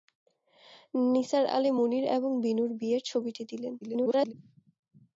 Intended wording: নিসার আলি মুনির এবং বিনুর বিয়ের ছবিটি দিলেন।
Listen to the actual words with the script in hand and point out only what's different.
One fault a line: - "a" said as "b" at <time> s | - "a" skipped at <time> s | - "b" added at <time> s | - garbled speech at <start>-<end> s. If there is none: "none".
- garbled speech at 3.8-4.3 s